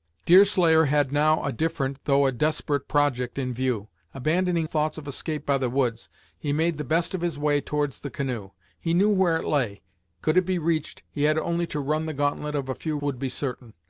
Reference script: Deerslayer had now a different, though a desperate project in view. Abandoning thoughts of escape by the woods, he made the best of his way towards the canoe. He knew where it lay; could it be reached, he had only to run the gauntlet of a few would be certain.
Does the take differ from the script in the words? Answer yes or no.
no